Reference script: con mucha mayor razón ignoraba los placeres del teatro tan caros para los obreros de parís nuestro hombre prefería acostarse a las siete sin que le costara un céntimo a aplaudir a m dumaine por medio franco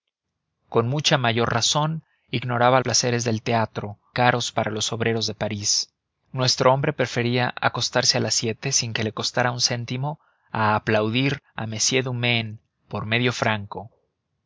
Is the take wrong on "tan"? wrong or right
wrong